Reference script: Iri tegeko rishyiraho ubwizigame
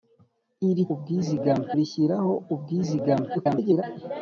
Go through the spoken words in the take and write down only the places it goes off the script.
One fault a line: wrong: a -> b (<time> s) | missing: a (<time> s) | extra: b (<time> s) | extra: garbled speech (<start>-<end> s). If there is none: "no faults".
wrong: tegeko -> ubwizigame (0.9 s)
extra: garbled speech (3.3-3.8 s)